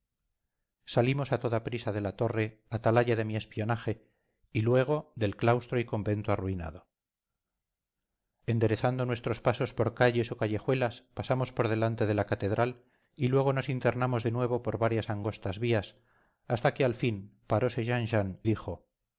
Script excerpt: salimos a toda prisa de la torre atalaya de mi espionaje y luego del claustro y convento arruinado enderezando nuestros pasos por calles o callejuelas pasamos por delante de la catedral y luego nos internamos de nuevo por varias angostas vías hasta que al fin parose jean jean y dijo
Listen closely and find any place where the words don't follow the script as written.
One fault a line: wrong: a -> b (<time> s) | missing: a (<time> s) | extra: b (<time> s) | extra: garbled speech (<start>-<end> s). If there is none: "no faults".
missing: y (18.4 s)